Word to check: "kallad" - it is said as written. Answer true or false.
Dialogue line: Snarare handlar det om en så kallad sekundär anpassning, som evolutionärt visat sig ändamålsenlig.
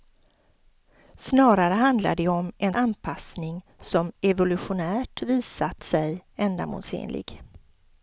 false